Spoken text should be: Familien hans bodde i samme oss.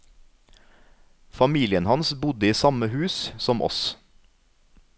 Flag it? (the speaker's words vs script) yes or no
yes